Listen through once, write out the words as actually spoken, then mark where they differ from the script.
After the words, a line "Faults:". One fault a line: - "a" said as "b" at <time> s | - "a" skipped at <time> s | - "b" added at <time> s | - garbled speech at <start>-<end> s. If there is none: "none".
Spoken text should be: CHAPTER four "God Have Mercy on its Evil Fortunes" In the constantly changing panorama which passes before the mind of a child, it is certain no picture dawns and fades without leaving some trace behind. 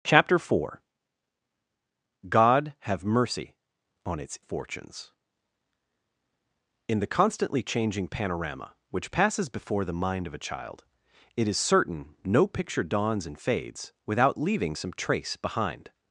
CHAPTER four "God Have Mercy on its Fortunes" In the constantly changing panorama which passes before the mind of a child, it is certain no picture dawns and fades without leaving some trace behind.
Faults:
- "Evil" skipped at 4.4 s